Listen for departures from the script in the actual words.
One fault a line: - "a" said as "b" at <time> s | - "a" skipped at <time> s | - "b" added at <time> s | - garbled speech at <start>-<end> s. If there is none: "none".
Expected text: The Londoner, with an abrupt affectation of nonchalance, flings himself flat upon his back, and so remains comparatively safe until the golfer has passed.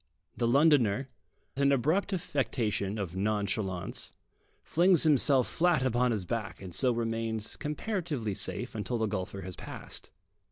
- "with" skipped at 1.1 s